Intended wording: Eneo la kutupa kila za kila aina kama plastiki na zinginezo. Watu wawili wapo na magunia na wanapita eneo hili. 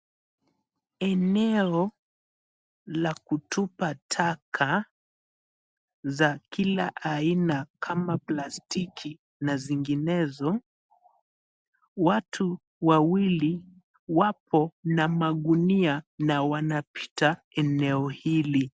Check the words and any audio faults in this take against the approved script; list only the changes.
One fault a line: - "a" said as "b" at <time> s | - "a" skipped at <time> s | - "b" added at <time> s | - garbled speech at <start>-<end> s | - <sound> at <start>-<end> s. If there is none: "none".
- "kila" said as "taka" at 4.1 s